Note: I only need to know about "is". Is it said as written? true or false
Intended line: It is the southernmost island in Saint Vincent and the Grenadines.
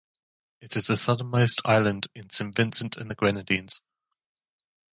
true